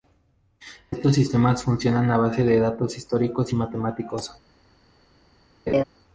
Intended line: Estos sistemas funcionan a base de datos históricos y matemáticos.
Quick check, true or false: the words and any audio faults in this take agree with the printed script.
false